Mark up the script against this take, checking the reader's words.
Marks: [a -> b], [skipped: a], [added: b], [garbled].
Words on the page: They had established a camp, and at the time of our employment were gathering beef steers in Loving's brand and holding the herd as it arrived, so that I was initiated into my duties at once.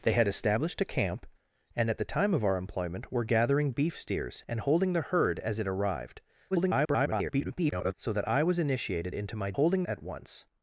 They had established a camp, and at the time of our employment were gathering beef steers [skipped: in Loving's brand] and holding the herd as it arrived, [garbled] so that I was initiated into my [duties -> holding] at once.